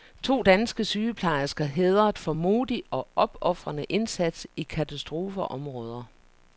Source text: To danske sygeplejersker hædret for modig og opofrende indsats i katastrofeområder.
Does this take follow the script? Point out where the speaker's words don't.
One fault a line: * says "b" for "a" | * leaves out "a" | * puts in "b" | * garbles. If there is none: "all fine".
all fine